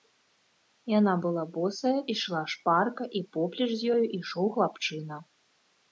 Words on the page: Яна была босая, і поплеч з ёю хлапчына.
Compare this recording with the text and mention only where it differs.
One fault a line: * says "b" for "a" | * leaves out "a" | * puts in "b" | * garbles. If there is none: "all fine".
* puts in "ішла шпарка"
* puts in "ішоў"